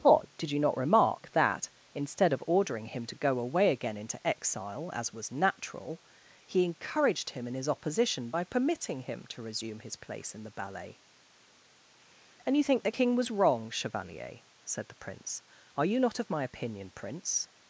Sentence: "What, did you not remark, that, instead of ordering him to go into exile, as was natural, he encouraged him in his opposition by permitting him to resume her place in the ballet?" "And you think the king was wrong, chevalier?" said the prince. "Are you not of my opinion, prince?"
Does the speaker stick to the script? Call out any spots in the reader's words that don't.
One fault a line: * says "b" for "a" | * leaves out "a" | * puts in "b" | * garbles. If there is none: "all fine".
* puts in "away again"
* says "his" for "her"